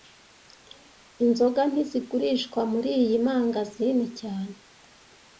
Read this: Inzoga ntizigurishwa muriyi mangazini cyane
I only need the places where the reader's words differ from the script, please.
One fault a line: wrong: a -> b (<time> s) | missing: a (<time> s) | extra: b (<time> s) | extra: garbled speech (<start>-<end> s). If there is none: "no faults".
no faults